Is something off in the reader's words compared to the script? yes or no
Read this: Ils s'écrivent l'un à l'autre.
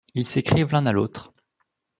no